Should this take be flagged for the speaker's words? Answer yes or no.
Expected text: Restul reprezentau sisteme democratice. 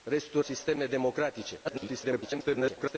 yes